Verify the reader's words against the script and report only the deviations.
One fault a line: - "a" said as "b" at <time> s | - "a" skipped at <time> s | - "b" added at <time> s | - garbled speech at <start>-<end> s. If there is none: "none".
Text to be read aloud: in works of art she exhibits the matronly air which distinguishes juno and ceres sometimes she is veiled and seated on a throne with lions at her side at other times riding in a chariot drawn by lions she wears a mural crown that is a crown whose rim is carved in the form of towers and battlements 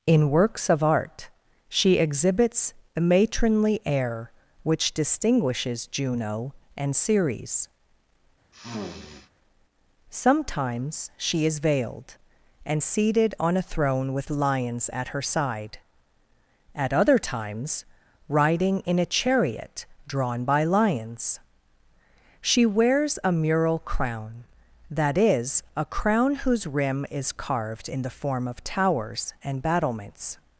none